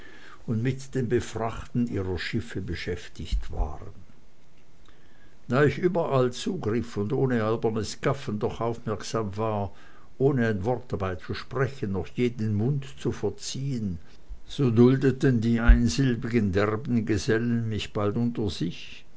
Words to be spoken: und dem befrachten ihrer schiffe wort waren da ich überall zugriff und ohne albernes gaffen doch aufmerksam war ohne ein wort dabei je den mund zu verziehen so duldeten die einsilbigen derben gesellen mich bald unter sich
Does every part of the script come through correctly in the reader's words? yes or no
no